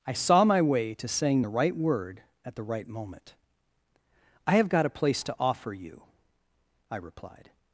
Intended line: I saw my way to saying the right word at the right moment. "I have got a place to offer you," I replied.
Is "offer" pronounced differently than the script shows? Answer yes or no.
no